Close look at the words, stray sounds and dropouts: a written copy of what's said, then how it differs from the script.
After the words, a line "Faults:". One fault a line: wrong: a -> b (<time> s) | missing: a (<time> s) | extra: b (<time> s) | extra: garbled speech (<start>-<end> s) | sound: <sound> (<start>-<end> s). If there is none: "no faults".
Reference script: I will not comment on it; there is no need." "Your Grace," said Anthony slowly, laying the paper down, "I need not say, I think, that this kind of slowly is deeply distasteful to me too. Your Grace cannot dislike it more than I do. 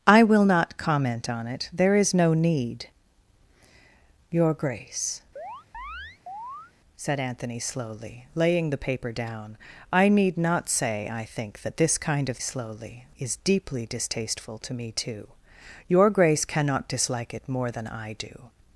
I will not comment on it; there is no need." "Your Grace," said Anthony slowly, laying the paper down, "I need not say, I think, that this kind of slowly is deeply distasteful to me too. Your Grace cannot dislike it more than I do.
Faults:
sound: chirp (5.4-6.7 s)